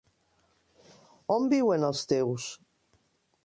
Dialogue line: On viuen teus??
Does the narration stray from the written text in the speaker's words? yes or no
yes